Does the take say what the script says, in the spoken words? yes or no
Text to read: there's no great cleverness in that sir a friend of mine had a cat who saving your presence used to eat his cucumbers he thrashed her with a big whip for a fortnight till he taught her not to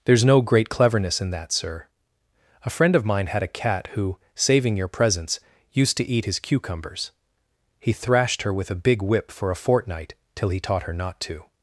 yes